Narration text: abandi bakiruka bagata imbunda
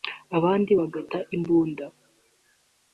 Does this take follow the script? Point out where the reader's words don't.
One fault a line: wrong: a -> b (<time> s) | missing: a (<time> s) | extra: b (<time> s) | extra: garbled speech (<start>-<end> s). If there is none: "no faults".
missing: bakiruka (0.7 s)